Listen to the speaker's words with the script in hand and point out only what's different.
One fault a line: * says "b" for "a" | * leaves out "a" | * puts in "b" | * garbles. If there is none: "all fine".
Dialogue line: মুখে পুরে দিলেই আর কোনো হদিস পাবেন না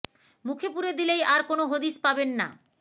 all fine